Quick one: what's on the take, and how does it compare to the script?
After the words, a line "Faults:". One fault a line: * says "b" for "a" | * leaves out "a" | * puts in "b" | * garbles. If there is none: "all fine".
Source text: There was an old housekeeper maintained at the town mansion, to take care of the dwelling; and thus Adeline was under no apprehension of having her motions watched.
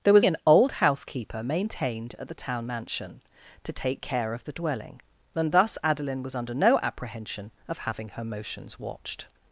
There was an old housekeeper maintained at the town mansion, to take care of the dwelling; and thus Adeline was under no apprehension of having her motions watched.
Faults:
all fine